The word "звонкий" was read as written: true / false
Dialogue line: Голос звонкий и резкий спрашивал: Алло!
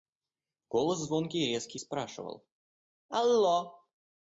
true